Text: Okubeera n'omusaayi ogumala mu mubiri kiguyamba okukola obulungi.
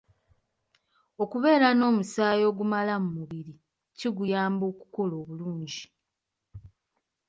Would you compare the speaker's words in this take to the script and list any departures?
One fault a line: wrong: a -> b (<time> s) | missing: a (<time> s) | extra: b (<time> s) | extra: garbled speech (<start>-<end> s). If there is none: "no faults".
no faults